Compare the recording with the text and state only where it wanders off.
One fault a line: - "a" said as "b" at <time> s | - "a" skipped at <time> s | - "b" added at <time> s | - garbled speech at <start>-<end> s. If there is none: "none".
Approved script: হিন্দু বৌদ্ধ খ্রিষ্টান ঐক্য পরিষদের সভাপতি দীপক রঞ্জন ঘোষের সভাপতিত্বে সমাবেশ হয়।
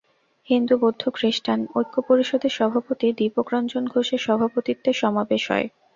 none